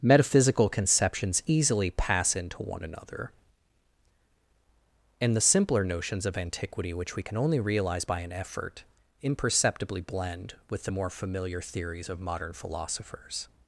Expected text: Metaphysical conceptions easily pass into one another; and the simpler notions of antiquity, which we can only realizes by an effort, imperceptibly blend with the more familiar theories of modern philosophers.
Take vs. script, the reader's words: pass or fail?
fail